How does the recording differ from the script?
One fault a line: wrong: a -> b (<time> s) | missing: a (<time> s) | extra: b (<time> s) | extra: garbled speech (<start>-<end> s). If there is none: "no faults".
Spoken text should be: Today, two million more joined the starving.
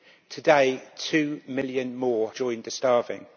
no faults